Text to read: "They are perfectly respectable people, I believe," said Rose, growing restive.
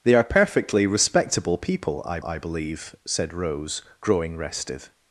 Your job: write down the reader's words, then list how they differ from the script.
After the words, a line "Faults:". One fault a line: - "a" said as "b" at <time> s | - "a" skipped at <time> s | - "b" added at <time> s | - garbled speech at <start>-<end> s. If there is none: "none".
"They are perfectly respectable people, I I believe," said Rose, growing restive.
Faults:
- "I" added at 2.2 s